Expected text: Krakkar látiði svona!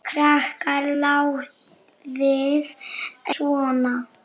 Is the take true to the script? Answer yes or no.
yes